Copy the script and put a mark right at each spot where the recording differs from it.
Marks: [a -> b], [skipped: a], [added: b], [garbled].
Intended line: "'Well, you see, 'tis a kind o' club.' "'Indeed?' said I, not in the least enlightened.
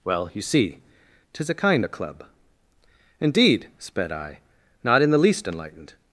"'Well, you see, 'tis a kind o' club.' "'Indeed?' [said -> sped] I, not in the least enlightened.